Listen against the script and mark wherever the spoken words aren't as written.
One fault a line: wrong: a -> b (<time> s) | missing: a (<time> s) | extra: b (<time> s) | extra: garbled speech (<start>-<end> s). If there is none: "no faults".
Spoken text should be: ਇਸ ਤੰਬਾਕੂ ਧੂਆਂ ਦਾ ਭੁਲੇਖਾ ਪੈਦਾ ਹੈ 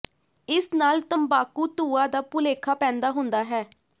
extra: ਨਾਲ (0.7 s)
extra: ਹੁੰਦਾ (3.1 s)